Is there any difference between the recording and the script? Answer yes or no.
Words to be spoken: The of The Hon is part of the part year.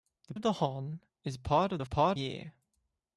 no